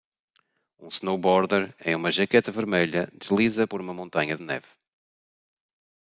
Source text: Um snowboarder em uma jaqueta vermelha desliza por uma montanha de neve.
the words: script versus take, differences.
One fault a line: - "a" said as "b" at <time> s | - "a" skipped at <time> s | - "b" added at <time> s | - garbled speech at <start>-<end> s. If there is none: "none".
- "de" skipped at 4.4 s